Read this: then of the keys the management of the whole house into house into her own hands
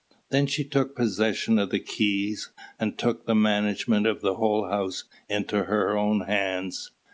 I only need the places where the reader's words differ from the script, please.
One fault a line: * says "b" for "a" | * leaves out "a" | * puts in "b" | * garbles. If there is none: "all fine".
* puts in "she took possession"
* puts in "and took"
* leaves out "house into"